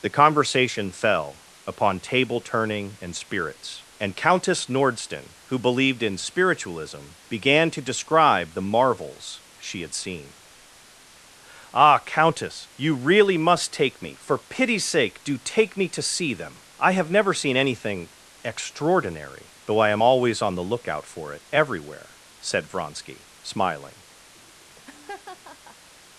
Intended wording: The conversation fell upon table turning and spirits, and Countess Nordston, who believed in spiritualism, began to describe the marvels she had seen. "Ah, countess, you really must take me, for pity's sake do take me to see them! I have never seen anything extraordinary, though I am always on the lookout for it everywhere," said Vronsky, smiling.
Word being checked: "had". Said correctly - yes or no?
yes